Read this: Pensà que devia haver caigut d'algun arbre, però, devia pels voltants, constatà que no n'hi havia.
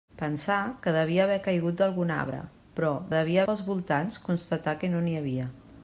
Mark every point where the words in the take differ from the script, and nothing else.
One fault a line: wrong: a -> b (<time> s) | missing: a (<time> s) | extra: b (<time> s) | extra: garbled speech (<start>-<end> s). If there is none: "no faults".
no faults